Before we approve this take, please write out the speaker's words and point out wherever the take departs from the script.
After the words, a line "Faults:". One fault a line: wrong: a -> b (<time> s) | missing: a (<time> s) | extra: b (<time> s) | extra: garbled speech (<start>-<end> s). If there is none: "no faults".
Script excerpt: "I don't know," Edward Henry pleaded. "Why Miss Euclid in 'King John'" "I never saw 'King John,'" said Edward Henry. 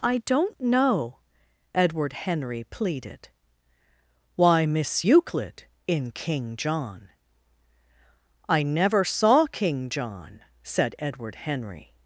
"I don't know," Edward Henry pleaded. "Why Miss Euclid in 'King John'" "I never saw 'King John,'" said Edward Henry.
Faults:
no faults